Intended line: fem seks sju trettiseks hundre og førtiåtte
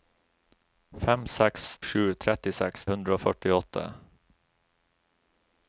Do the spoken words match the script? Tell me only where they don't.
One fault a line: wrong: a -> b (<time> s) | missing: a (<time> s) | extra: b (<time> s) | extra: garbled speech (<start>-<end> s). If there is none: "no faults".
no faults